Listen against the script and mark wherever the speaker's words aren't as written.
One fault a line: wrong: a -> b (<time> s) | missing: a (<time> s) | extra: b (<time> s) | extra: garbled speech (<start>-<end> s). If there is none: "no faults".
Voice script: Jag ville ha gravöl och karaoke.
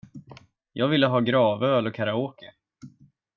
no faults